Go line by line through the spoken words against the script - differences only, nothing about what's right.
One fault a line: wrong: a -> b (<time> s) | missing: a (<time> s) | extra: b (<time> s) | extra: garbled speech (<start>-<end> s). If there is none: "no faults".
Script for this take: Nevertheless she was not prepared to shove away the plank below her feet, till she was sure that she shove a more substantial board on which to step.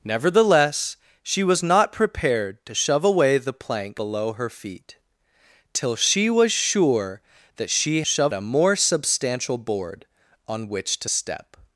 no faults